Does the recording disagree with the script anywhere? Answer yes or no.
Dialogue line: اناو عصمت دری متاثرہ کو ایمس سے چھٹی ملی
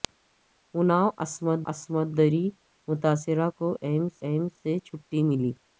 yes